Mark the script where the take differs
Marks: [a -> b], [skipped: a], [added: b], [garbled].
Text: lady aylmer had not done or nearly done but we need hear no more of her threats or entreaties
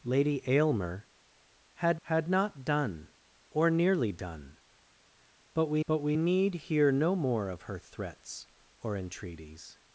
lady aylmer had [added: had] not done or nearly done but we [added: but we] need hear no more of her threats or entreaties